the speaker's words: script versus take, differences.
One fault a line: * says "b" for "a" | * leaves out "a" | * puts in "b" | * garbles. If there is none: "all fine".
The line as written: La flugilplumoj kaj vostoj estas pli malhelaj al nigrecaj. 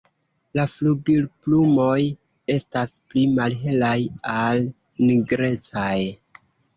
* leaves out "kaj vostoj"